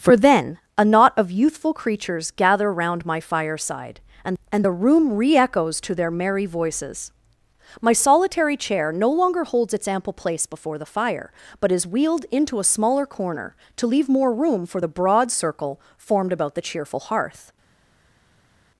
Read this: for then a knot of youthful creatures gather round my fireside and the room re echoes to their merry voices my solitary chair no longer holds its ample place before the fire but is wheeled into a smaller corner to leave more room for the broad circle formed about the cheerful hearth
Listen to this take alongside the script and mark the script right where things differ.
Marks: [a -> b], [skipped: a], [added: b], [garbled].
for then a knot of youthful creatures gather round my fireside and [added: and] the room re echoes to their merry voices my solitary chair no longer holds its ample place before the fire but is wheeled into a smaller corner to leave more room for the broad circle formed about the cheerful hearth